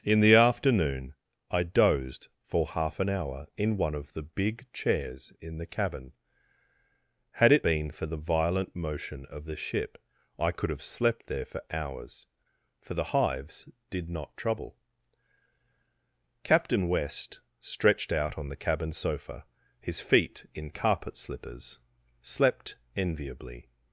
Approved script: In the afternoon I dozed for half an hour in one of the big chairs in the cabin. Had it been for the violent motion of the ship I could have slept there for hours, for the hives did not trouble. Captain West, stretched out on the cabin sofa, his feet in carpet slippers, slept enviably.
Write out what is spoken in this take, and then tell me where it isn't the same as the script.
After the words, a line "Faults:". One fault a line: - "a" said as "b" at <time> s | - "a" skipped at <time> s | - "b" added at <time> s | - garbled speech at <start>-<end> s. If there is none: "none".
In the afternoon I dozed for half an hour in one of the big chairs in the cabin. Had it been for the violent motion of the ship I could have slept there for hours, for the hives did not trouble. Captain West, stretched out on the cabin sofa, his feet in carpet slippers, slept enviably.
Faults:
none